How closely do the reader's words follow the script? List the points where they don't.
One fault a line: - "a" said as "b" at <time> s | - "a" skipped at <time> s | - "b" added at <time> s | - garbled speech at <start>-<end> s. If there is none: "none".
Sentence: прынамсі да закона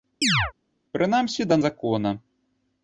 none